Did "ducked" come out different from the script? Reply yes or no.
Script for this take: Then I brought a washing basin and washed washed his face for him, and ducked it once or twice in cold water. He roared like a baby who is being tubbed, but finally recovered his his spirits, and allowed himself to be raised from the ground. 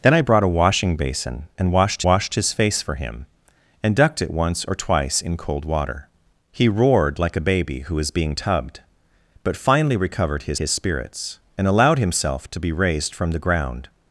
no